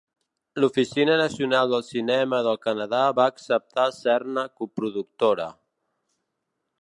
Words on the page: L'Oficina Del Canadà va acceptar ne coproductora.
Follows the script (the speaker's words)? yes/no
no